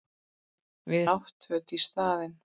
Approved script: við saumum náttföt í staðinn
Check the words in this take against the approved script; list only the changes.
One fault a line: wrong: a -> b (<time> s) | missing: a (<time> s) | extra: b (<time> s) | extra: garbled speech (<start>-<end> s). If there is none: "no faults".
missing: saumum (1.1 s)